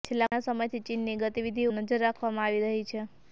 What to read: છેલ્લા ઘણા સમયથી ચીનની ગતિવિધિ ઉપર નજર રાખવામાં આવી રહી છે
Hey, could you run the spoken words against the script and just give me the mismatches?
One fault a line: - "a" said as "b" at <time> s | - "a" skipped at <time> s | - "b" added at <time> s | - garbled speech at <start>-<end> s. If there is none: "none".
- "ઉપર" skipped at 1.7 s